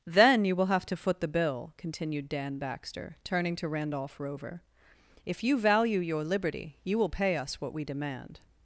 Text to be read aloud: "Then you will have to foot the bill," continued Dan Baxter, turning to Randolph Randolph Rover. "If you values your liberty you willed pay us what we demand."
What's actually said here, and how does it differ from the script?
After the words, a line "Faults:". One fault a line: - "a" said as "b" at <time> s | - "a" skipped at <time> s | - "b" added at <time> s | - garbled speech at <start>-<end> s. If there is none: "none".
"Then you will have to foot the bill," continued Dan Baxter, turning to Randolph Rover. "If you value your liberty you will pay us what we demand."
Faults:
- "Randolph" skipped at 4.2 s
- "values" said as "value" at 5.6 s
- "willed" said as "will" at 7.0 s